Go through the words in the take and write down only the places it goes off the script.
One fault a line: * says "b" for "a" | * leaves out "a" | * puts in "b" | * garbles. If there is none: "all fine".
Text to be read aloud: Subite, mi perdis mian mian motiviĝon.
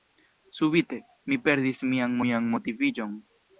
all fine